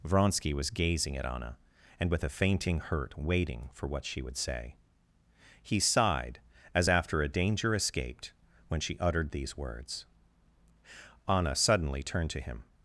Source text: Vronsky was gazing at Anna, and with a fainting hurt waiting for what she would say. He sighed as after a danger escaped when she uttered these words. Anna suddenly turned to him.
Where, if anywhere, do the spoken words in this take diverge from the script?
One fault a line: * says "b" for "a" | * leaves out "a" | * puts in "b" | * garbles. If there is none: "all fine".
all fine